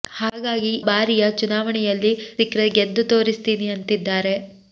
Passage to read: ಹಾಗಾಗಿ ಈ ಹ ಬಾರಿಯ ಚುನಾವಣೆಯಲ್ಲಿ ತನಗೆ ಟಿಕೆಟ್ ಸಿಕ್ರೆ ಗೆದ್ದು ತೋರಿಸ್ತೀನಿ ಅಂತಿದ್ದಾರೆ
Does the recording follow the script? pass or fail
fail